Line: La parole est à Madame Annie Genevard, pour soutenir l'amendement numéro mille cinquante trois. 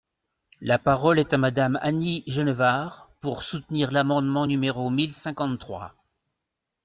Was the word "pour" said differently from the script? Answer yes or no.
no